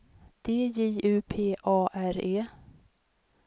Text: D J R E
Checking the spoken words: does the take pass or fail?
fail